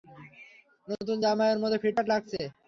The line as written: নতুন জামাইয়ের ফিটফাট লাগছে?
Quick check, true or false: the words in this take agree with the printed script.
false